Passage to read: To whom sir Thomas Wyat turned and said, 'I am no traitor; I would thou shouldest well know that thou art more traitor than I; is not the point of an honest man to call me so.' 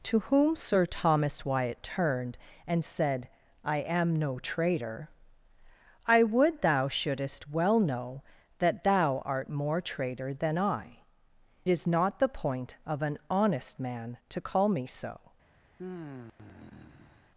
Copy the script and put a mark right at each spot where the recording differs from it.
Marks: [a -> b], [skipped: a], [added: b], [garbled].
To whom sir Thomas Wyat turned and said, 'I am no traitor; I would thou shouldest well know that thou art more traitor than I; is not the point of an honest man to call me so.'